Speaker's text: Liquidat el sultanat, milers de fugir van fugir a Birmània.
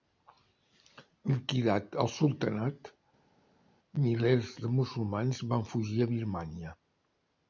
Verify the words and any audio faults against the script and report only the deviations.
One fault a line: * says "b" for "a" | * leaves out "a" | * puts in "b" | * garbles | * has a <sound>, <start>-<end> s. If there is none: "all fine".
* says "musulmans" for "fugir"